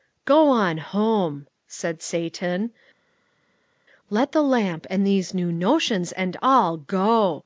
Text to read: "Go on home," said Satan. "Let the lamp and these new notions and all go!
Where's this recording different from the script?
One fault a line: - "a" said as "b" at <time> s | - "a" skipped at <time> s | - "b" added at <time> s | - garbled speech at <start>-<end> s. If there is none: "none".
none